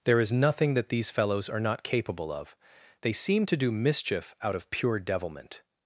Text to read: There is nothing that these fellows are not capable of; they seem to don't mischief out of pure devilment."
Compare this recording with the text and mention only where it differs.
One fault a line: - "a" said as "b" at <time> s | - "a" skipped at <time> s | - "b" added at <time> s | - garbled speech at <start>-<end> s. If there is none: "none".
- "don't" said as "do" at 3.6 s